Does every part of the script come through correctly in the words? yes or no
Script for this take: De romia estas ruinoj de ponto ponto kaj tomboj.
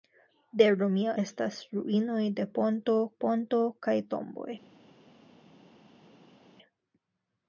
yes